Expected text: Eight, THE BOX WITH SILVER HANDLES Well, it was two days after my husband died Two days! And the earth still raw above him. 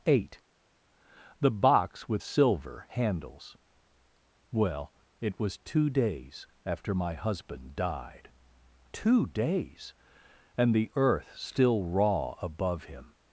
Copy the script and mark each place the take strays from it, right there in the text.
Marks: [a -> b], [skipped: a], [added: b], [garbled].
Eight, THE BOX WITH SILVER HANDLES Well, it was two days after my husband died Two days! And the earth still raw above him.